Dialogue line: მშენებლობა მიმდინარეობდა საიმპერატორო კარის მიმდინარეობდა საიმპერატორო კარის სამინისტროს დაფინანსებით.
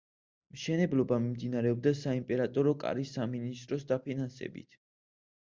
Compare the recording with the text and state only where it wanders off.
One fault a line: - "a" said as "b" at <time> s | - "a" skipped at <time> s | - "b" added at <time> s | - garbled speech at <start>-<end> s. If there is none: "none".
- "მიმდინარეობდა საიმპერატორო კარის" skipped at 3.1 s